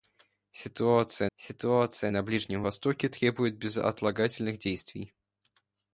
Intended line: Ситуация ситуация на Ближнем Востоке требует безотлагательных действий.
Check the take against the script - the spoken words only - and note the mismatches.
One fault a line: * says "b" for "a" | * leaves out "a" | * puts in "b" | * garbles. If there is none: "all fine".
all fine